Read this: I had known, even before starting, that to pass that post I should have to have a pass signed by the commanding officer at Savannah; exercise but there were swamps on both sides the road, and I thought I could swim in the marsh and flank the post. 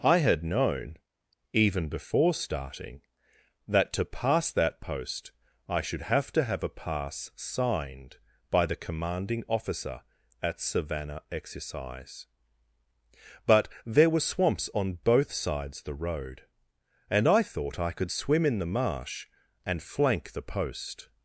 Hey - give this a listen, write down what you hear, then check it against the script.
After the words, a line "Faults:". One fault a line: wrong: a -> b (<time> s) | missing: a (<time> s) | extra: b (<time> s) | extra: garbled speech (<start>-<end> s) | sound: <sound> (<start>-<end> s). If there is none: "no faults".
I had known, even before starting, that to pass that post I should have to have a pass signed by the commanding officer at Savannah; exercise but there were swamps on both sides the road, and I thought I could swim in the marsh and flank the post.
Faults:
no faults